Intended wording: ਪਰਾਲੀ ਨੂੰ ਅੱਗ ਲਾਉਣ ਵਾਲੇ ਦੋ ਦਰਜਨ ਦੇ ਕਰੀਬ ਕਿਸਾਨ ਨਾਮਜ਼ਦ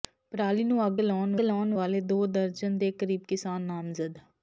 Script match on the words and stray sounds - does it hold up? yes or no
no